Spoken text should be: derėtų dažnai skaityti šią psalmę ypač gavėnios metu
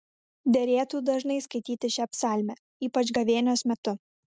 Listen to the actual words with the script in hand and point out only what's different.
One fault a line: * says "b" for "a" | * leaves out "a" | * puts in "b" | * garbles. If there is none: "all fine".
all fine